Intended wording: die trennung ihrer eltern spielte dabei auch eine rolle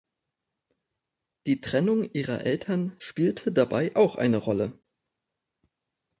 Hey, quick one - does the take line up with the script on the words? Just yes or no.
yes